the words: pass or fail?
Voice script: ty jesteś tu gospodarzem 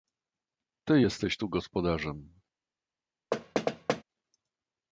pass